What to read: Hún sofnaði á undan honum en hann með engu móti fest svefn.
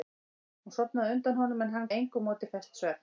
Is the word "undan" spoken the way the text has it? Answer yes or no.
yes